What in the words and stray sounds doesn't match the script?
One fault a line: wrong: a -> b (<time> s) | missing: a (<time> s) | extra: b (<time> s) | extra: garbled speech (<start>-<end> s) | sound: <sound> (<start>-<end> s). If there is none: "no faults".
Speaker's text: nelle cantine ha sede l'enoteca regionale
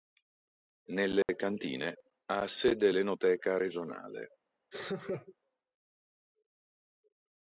sound: dropout (1.2-1.3 s)
sound: laugh (4.7-5.3 s)